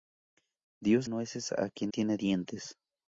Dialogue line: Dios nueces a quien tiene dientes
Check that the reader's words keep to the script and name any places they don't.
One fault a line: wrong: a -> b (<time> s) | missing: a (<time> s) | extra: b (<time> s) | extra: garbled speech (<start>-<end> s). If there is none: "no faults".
no faults